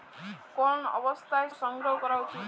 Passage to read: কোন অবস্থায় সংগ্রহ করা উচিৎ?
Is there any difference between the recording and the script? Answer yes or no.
no